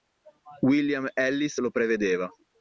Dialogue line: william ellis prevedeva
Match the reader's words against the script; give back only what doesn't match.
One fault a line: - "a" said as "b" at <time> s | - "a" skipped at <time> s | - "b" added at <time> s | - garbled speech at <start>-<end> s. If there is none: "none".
- "lo" added at 1.6 s